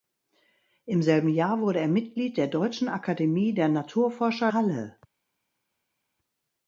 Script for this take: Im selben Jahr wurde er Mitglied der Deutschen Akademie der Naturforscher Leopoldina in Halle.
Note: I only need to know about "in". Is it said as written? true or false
false